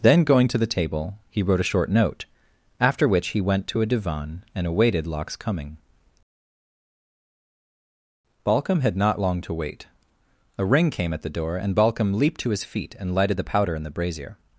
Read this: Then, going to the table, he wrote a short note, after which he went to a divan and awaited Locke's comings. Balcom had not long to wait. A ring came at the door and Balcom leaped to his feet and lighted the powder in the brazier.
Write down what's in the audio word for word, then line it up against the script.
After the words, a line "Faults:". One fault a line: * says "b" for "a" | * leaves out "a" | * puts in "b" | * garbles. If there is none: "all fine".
Then, going to the table, he wrote a short note, after which he went to a divan and awaited Locke's coming. Balcom had not long to wait. A ring came at the door and Balcom leaped to his feet and lighted the powder in the brazier.
Faults:
* says "coming" for "comings"